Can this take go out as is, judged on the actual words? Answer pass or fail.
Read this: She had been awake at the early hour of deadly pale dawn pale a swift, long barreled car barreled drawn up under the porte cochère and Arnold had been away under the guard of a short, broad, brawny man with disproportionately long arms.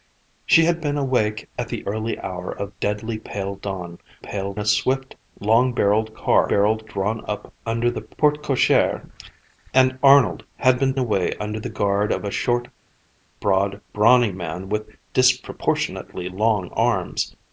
pass